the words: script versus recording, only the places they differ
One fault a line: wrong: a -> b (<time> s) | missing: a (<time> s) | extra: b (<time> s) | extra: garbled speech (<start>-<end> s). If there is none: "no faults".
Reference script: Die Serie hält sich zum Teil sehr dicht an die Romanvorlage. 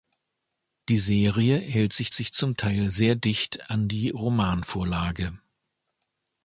extra: sich (2.1 s)